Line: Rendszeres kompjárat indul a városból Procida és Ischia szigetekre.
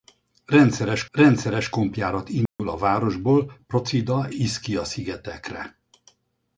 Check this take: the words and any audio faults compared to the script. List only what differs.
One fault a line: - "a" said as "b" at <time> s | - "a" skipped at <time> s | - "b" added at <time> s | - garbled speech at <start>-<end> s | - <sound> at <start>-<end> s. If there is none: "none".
- "rendszeres" added at 1.1 s
- dropout at 2.5-2.6 s
- "és" skipped at 4.3 s